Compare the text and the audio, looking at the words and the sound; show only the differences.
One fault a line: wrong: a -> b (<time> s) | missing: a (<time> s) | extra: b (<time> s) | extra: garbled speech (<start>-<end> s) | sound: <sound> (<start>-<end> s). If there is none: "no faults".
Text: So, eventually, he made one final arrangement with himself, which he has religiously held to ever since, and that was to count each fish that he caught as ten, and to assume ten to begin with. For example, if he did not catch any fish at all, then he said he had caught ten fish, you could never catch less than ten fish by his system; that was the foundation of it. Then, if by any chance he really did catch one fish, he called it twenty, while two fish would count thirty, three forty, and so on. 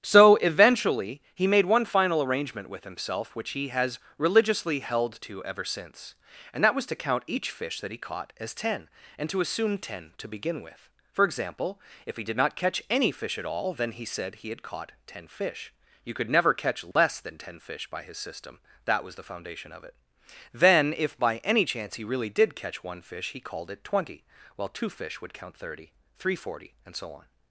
sound: dropout (16.9-17.0 s)